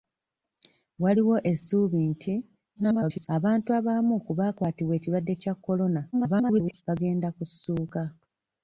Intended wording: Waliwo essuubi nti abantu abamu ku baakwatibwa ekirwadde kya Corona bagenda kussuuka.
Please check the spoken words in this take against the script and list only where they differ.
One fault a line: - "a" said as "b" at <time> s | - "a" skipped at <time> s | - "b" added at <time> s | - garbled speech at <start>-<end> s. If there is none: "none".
- garbled speech at 2.8-3.3 s
- garbled speech at 6.1-6.8 s